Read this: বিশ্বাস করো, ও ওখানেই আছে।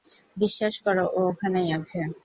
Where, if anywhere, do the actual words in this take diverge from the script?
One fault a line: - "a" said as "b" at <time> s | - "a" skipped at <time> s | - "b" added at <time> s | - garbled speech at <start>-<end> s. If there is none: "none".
none